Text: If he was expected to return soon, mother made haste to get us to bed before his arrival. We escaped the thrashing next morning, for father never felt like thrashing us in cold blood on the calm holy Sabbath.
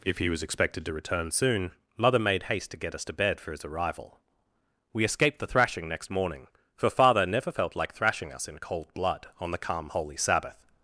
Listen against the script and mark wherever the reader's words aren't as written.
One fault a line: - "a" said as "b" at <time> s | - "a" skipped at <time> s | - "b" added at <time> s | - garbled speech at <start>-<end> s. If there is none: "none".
- "before" said as "for" at 3.4 s